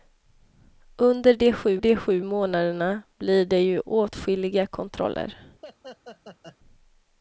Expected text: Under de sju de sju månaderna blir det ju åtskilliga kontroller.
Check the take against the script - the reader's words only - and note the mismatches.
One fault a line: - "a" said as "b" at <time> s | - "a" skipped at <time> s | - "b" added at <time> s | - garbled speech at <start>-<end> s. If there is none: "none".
none